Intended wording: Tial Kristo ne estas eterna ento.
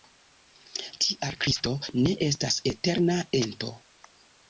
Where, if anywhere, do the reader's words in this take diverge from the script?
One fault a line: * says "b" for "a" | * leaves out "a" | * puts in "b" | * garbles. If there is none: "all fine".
all fine